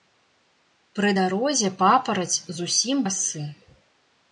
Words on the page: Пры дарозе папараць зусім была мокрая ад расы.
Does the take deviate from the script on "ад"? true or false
true